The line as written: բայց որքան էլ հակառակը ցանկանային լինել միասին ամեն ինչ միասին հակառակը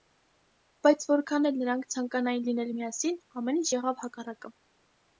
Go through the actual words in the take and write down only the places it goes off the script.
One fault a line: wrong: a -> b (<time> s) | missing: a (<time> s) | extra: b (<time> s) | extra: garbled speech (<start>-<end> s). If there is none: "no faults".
wrong: հակառակը -> նրանք (1.6 s)
wrong: միասին -> եղավ (3.8 s)